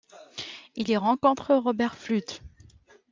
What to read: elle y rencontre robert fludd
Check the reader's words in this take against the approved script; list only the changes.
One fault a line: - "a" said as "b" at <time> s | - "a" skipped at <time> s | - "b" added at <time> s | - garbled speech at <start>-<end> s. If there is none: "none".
- "elle" said as "il" at 0.8 s